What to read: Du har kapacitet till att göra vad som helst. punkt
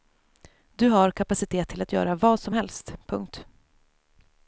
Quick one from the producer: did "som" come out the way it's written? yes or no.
yes